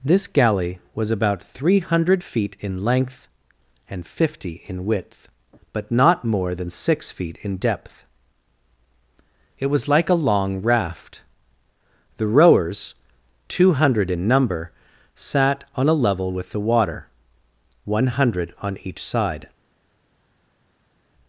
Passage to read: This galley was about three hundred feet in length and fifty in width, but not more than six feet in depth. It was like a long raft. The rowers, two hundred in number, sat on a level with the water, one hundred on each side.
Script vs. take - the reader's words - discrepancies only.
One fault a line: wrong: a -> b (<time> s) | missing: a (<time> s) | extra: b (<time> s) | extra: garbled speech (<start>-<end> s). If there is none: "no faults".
no faults